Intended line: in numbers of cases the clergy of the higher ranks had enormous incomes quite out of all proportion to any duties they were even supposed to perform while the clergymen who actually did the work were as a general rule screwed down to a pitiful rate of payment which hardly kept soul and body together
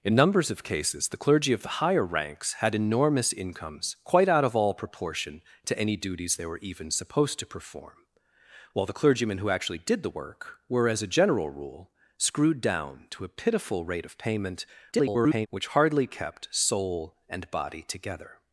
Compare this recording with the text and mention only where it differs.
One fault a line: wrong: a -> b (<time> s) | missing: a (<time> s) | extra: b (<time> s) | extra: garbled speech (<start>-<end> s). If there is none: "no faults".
extra: garbled speech (14.9-15.5 s)